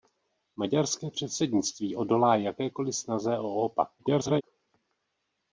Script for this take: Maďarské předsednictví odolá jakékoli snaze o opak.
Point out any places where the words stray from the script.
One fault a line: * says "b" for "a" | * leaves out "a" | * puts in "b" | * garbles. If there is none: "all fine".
* garbles